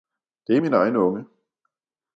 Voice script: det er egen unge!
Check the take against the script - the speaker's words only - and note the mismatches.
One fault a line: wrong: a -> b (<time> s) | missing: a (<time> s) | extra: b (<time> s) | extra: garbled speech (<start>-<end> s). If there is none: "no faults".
extra: min (0.6 s)